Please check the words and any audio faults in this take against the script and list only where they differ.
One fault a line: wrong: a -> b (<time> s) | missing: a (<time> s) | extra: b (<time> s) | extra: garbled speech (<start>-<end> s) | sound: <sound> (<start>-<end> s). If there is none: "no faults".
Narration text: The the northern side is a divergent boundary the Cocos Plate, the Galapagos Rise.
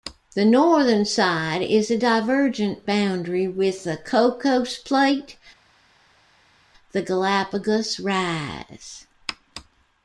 missing: the (0.5 s)
extra: with (3.5 s)